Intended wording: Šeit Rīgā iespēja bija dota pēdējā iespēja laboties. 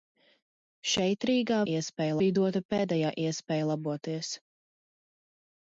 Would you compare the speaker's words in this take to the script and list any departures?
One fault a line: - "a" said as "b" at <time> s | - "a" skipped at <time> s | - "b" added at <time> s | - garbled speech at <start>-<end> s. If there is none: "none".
none